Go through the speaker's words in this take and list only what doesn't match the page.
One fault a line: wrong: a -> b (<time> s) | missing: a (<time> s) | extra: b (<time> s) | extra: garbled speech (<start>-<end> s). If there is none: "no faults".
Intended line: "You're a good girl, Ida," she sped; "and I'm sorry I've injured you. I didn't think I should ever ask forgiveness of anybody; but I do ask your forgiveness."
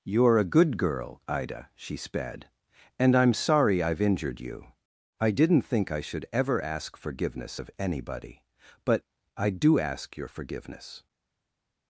no faults